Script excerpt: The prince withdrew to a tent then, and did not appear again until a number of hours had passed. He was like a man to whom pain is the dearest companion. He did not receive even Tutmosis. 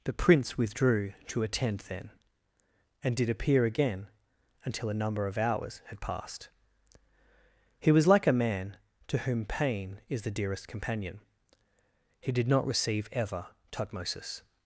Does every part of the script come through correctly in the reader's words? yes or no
no